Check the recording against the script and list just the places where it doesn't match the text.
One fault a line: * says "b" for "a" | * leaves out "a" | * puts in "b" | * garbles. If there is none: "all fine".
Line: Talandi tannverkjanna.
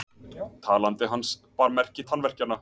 * puts in "hans bar merki"